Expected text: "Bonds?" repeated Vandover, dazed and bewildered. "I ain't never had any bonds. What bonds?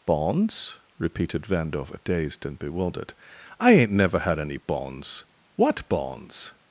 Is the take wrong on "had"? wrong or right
right